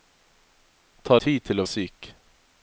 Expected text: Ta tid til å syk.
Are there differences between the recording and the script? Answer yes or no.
no